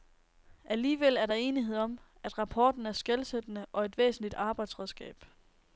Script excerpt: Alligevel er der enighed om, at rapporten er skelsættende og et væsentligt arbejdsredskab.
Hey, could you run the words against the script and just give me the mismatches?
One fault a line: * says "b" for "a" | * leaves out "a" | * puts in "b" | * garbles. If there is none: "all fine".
all fine